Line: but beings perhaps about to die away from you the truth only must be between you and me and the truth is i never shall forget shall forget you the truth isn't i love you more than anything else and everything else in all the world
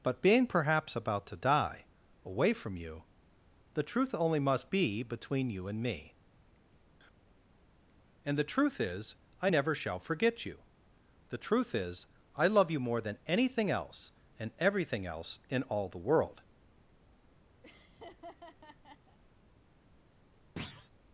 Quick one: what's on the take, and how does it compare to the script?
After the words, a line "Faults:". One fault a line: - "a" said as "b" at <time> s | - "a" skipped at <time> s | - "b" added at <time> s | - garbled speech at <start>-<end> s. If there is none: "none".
but being perhaps about to die away from you the truth only must be between you and me and the truth is i never shall forget you the truth is i love you more than anything else and everything else in all the world
Faults:
- "beings" said as "being" at 0.2 s
- "shall forget" skipped at 10.4 s
- "isn't" said as "is" at 11.7 s